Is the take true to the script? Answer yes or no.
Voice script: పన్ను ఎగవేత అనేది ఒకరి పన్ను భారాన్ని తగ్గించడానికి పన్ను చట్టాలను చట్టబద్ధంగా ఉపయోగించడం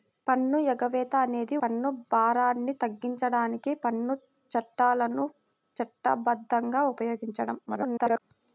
no